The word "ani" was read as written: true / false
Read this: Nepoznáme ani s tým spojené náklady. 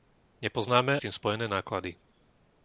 false